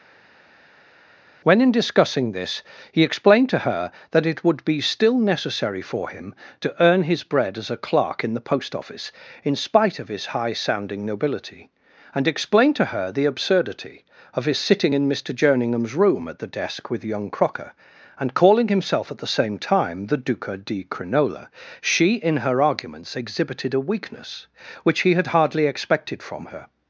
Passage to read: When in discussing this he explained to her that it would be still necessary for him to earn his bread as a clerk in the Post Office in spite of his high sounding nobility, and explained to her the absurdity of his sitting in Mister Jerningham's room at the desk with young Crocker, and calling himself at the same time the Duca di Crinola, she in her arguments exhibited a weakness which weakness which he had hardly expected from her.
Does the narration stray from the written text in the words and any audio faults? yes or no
yes